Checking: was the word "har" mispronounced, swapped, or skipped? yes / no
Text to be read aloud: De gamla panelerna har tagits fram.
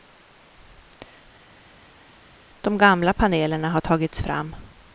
no